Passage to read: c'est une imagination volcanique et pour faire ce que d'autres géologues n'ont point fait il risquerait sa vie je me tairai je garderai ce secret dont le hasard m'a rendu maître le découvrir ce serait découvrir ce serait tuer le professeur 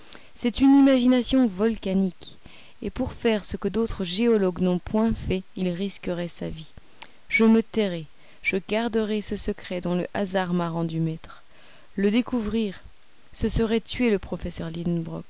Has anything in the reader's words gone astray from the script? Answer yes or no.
yes